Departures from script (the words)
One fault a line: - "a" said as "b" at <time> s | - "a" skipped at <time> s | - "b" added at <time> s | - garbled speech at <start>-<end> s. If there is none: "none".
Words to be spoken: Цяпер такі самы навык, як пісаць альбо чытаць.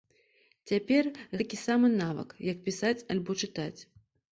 none